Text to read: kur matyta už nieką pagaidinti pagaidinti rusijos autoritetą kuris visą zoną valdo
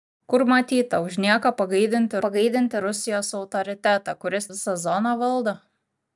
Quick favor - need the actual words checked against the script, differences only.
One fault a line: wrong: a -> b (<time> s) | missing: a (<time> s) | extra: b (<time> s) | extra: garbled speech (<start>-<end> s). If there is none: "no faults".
no faults